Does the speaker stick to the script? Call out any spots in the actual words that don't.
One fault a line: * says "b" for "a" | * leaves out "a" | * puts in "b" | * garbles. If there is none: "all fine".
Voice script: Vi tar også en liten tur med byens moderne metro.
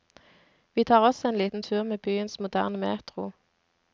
all fine